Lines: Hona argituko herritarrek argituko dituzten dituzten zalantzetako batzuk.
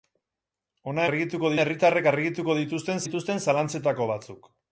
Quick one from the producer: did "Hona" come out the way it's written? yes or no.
yes